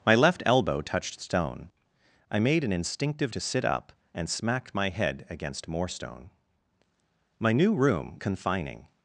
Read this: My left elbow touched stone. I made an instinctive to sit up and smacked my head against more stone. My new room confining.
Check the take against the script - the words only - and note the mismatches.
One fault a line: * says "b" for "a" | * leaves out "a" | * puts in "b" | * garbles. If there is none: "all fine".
all fine